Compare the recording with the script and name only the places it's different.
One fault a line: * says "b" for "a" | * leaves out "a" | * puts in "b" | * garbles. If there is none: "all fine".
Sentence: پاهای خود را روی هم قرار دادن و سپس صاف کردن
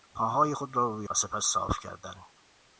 * leaves out "هم قرار دادن"